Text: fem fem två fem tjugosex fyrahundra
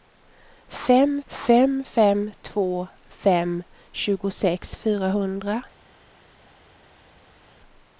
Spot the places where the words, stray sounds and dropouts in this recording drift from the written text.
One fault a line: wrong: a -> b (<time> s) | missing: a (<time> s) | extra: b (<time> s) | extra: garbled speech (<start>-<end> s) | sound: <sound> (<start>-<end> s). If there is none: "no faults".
extra: fem (1.8 s)